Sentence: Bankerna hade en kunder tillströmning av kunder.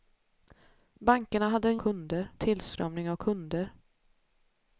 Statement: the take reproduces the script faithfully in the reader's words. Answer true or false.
true